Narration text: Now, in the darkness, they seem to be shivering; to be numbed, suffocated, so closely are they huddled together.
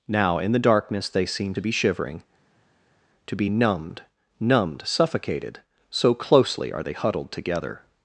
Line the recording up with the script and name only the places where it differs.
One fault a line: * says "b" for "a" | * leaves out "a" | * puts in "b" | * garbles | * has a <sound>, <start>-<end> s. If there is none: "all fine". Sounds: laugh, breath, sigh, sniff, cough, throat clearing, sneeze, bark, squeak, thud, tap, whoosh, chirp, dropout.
* puts in "numbed"